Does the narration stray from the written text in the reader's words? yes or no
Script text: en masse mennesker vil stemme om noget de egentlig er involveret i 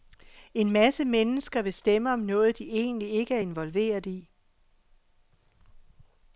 yes